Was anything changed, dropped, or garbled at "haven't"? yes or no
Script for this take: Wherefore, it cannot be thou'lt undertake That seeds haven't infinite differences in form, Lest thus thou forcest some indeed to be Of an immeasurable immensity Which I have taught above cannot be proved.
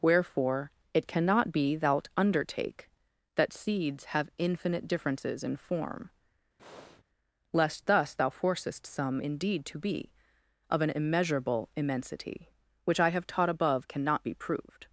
yes